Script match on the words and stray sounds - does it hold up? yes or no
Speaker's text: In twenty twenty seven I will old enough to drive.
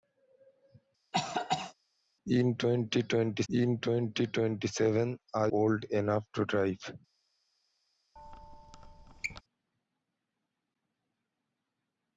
no